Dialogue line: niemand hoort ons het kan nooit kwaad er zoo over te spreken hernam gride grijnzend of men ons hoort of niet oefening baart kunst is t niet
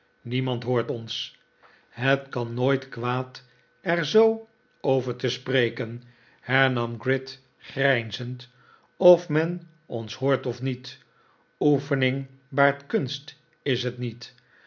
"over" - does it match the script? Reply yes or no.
yes